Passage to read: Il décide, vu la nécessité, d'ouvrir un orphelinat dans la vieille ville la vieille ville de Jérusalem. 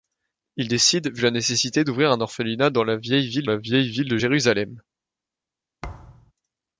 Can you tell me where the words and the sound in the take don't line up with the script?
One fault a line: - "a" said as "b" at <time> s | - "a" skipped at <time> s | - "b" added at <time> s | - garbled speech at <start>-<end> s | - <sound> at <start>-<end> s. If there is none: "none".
- thud at 5.8-6.3 s